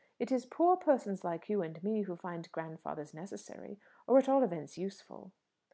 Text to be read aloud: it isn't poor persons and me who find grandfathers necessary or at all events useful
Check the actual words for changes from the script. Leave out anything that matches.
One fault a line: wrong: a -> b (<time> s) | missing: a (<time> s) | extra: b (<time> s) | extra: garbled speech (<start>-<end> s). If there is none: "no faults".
wrong: isn't -> is (0.3 s)
extra: like you (1.2 s)